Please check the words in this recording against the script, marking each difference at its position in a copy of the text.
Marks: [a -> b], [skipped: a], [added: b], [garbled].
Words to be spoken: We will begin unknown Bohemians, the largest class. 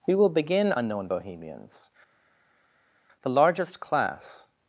We will begin unknown Bohemians, the largest class.